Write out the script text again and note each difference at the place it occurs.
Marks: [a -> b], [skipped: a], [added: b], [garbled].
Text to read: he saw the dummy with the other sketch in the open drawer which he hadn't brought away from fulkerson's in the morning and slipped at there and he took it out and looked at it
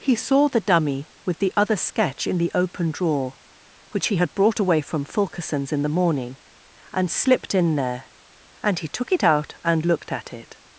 he saw the dummy with the other sketch in the open drawer which he [hadn't -> had] brought away from fulkerson's in the morning and slipped [at -> in] there and he took it out and looked at it